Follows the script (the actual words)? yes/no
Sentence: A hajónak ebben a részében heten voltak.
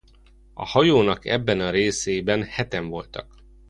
yes